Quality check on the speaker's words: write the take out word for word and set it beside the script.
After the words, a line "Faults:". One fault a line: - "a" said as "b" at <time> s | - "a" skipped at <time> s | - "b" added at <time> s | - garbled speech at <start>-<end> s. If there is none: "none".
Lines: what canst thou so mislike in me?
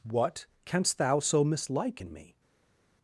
what canst thou so mislike in me?
Faults:
none